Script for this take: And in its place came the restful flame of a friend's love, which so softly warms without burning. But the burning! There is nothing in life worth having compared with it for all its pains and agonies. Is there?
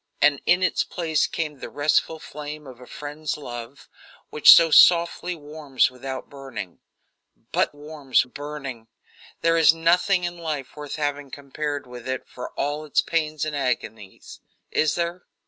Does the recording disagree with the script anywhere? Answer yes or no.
yes